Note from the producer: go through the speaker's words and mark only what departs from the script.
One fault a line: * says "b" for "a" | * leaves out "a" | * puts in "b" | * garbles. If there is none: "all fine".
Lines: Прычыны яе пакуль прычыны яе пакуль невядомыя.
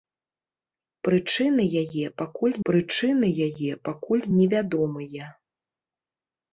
all fine